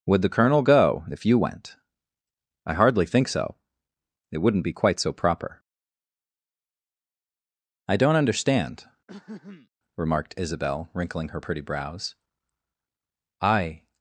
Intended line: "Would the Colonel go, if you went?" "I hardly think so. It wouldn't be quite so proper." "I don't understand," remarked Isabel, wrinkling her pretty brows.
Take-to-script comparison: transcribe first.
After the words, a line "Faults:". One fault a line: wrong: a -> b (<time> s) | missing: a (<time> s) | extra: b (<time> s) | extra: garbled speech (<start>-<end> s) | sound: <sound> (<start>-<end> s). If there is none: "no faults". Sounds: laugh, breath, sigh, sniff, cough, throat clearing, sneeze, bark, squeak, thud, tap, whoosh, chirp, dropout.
"Would the Colonel go, if you went?" "I hardly think so. It wouldn't be quite so proper." "I don't understand," remarked Isabel, wrinkling her pretty brows. "I
Faults:
sound: throat clearing (9.1-9.7 s)
extra: I (13.4 s)